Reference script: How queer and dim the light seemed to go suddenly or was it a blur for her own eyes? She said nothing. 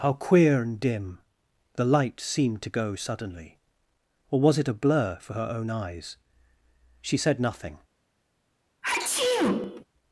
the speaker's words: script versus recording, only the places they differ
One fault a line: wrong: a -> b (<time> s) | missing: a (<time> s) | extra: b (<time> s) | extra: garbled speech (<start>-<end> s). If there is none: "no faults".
no faults